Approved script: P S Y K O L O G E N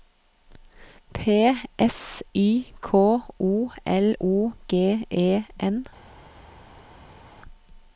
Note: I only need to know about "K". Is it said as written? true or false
true